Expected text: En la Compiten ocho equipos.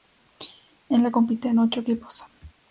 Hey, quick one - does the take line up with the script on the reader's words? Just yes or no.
yes